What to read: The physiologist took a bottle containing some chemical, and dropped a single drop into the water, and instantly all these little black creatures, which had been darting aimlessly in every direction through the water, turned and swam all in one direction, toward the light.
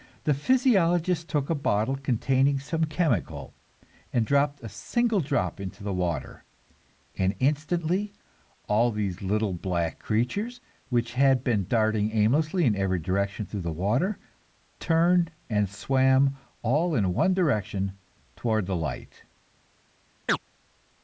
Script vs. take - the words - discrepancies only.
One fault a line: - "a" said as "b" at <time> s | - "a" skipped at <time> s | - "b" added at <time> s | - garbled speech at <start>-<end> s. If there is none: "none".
none